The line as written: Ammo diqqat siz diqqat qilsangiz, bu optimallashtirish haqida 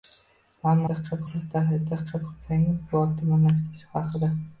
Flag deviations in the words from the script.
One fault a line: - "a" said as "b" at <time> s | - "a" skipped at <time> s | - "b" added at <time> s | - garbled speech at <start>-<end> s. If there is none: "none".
none